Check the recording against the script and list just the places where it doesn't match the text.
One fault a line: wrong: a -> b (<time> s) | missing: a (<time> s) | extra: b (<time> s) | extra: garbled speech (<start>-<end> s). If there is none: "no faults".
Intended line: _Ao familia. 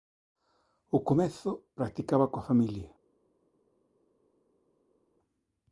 extra: comezo practicaba coa (1.1 s)